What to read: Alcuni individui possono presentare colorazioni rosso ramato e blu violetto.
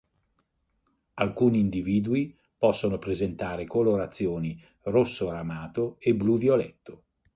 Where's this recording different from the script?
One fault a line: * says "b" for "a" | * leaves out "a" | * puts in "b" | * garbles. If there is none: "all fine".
all fine